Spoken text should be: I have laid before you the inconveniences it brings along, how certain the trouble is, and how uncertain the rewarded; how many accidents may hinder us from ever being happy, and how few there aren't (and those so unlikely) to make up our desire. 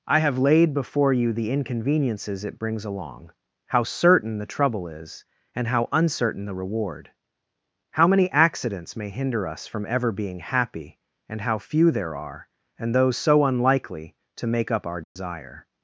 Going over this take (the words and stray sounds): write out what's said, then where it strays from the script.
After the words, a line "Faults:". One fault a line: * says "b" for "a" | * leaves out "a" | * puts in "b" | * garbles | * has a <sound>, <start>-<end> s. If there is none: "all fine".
I have laid before you the inconveniences it brings along, how certain the trouble is, and how uncertain the reward; how many accidents may hinder us from ever being happy, and how few there are (and those so unlikely) to make up our desire.
Faults:
* says "reward" for "rewarded"
* says "are" for "aren't"
* has a dropout, 15.0-15.2 s